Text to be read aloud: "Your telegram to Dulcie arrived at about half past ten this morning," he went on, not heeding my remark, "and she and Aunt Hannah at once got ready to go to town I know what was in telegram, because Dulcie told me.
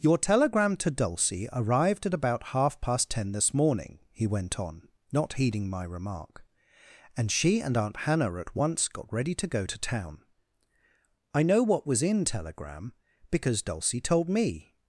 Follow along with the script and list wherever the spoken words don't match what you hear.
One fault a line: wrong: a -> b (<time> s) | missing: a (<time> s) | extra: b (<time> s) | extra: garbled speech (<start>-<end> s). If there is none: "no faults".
no faults